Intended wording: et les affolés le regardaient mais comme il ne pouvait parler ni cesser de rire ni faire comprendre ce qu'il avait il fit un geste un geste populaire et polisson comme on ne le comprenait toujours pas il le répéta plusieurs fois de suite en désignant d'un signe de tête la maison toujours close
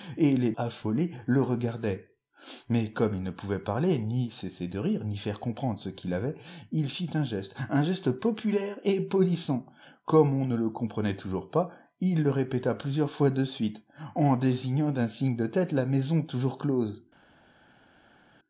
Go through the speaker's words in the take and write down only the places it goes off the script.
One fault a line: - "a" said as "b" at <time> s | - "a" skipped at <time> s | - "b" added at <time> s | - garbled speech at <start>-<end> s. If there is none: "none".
none